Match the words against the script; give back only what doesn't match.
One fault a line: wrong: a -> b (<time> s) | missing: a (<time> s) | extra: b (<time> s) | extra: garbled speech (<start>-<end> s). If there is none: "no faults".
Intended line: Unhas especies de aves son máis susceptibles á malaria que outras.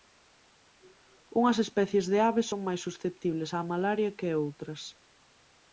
no faults